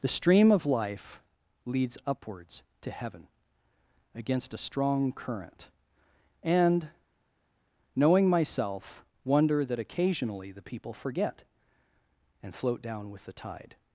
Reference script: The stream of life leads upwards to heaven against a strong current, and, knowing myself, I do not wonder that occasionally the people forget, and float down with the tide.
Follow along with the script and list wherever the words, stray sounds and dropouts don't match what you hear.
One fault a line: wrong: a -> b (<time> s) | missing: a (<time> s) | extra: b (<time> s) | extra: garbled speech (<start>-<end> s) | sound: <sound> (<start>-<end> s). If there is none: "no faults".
missing: I do not (9.1 s)